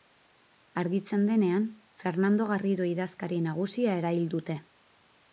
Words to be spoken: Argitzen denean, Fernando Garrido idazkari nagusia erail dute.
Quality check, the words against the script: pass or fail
pass